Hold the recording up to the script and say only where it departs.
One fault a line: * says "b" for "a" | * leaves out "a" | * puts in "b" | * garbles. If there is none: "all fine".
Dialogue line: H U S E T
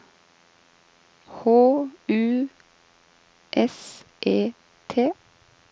all fine